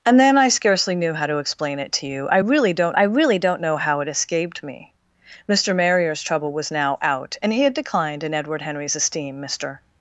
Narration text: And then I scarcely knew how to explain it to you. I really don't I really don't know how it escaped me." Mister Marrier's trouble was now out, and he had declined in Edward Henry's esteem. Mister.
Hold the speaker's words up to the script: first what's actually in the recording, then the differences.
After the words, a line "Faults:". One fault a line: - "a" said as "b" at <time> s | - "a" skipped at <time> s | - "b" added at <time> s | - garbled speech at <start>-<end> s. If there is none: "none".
And then I scarcely knew how to explain it to you. I really don't I really don't know how it escaped me." Mister Marrier's trouble was now out, and he had declined in Edward Henry's esteem. Mister.
Faults:
none